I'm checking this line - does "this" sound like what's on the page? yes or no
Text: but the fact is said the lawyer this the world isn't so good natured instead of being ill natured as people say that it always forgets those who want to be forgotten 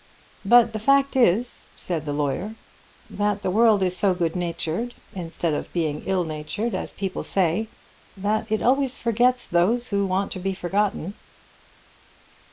no